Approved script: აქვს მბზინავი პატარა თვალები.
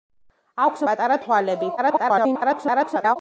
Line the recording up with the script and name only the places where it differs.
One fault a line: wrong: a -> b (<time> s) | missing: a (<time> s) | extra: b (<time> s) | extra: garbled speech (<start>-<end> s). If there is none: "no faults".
missing: მბზინავი (0.8 s)
extra: garbled speech (1.8-3.2 s)